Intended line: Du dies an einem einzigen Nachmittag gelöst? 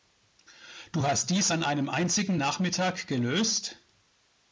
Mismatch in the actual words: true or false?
true